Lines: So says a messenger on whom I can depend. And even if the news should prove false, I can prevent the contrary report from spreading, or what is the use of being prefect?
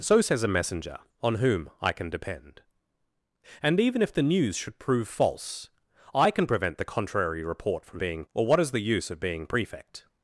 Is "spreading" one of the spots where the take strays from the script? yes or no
yes